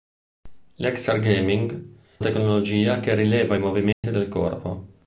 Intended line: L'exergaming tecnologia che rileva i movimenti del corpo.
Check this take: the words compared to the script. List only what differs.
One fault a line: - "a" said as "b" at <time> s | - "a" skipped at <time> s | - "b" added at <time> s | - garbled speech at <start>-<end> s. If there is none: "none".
none